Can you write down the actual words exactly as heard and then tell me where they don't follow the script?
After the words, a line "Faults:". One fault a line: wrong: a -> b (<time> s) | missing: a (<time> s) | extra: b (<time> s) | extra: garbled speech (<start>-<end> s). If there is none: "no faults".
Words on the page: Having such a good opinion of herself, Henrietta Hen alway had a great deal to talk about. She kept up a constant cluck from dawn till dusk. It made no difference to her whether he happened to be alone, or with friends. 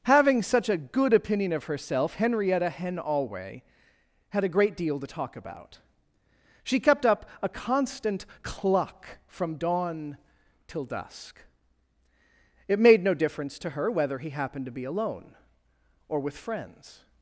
Having such a good opinion of herself, Henrietta Hen alway had a great deal to talk about. She kept up a constant cluck from dawn till dusk. It made no difference to her whether he happened to be alone, or with friends.
Faults:
no faults